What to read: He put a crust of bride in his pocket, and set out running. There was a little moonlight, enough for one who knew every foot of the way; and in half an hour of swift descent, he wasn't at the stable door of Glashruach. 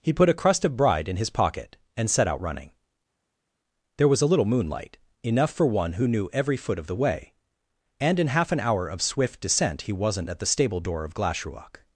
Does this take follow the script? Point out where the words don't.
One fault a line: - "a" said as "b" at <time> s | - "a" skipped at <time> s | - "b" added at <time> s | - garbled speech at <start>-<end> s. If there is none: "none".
none